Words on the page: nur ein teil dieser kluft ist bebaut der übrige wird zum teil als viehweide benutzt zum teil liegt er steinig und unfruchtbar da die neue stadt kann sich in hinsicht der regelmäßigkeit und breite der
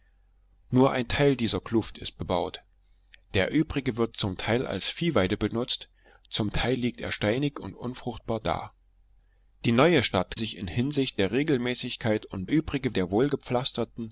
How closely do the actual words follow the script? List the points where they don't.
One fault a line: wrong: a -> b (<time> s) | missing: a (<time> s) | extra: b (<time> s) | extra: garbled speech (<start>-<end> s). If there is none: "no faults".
missing: kann (10.4 s)
wrong: breite -> übrige (12.5 s)